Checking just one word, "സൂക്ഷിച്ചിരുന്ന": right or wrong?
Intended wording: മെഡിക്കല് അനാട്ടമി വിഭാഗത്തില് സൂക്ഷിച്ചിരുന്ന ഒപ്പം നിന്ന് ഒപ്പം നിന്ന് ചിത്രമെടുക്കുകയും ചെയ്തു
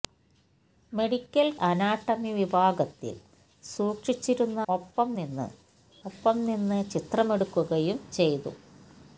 right